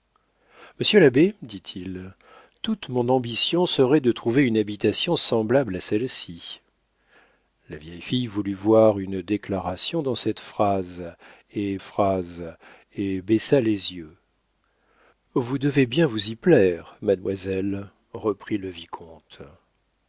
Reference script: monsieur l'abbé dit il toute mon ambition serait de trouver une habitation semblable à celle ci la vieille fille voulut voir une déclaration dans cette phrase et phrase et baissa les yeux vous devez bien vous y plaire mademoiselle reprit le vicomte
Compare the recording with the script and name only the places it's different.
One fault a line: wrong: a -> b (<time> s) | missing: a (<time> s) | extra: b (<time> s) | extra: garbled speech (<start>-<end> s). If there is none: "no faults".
no faults